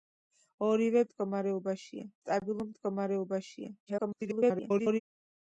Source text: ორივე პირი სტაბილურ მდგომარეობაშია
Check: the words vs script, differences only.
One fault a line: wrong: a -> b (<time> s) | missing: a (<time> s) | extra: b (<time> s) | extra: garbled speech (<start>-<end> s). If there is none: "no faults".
wrong: პირი -> მდგომარეობაშია (1.1 s)
extra: garbled speech (3.9-5.0 s)